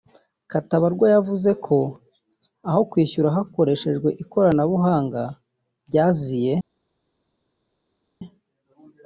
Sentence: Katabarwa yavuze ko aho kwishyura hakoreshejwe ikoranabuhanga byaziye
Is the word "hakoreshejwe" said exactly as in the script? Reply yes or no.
yes